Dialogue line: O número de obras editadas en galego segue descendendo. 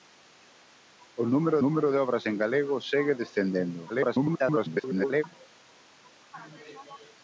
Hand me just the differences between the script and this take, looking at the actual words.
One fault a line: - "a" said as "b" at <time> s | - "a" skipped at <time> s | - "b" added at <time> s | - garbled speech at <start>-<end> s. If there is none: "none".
- "número" added at 1.6 s
- "editadas" skipped at 2.2 s
- garbled speech at 3.9-5.2 s